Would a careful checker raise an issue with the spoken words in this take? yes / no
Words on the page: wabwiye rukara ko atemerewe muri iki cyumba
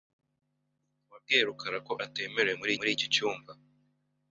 yes